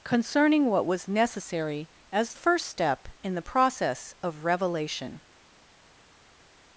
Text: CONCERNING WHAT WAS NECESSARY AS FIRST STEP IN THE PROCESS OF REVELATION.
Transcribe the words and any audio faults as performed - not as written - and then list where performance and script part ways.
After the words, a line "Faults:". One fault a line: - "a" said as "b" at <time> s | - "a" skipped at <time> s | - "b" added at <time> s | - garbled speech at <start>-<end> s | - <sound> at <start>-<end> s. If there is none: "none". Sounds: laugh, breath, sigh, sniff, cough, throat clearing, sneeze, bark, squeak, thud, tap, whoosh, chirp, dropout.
CONCERNING WHAT WAS NECESSARY AS FIRST STEP IN THE PROCESS OF REVELATION.
Faults:
none